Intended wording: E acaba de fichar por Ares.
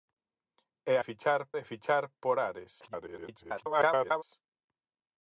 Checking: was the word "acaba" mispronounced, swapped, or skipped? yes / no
yes